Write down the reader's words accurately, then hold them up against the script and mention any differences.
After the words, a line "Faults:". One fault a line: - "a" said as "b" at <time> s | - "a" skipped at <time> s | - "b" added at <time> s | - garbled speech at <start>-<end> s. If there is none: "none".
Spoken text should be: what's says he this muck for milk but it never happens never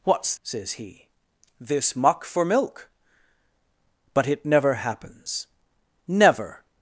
what's says he this muck for milk but it never happens never
Faults:
none